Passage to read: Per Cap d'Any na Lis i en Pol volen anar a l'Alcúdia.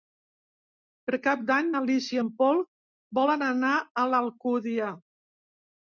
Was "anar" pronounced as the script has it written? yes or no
yes